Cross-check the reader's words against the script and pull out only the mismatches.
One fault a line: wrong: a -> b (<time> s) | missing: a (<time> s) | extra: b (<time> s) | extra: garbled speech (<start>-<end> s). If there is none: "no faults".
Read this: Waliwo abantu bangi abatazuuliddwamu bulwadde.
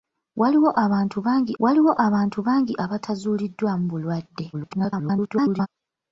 extra: waliwo abantu bangi (1.6 s)
extra: garbled speech (4.5-5.7 s)